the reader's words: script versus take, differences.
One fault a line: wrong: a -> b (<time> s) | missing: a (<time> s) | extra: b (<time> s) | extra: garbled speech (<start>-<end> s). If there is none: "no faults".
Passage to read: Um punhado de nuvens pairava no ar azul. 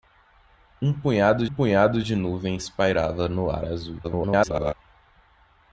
extra: punhado (1.5 s)
extra: garbled speech (4.0-4.7 s)